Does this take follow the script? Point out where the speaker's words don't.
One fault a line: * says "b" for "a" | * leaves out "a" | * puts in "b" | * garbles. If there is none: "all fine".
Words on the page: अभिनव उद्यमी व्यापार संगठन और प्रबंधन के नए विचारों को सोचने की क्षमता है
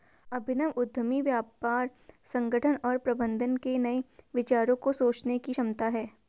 all fine